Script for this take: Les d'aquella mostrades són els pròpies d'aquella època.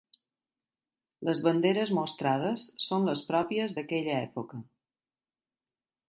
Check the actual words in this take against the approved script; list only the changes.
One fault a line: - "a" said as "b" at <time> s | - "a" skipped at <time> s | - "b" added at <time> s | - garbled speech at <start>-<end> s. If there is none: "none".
- "d'aquella" said as "banderes" at 1.5 s
- "els" said as "les" at 3.1 s